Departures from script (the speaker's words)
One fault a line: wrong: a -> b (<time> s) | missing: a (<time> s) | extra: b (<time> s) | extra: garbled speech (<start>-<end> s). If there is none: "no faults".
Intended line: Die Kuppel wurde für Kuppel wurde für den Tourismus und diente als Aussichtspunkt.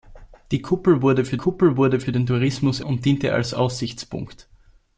no faults